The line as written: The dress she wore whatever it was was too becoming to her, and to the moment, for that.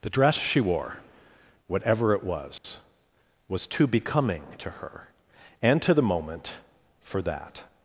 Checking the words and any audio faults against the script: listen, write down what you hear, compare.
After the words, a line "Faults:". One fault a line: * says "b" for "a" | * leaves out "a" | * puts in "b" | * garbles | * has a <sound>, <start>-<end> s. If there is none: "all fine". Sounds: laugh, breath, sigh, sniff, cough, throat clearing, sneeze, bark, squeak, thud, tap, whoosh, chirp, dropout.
The dress she wore whatever it was was too becoming to her, and to the moment, for that.
Faults:
* has a dropout, 2.6-2.6 s